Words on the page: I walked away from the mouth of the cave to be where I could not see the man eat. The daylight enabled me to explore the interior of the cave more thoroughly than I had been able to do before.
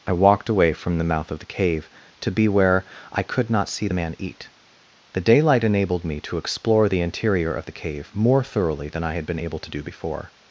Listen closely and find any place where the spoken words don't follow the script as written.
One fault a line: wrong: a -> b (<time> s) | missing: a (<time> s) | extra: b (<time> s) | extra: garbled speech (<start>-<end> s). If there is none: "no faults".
no faults